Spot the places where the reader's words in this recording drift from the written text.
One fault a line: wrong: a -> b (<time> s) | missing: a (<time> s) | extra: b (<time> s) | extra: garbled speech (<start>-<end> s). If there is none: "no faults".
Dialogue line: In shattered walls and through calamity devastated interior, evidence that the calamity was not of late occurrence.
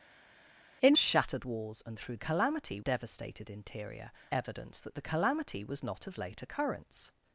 no faults